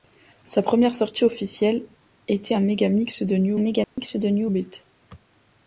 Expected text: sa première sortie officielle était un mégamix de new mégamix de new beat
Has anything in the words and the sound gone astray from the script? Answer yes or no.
yes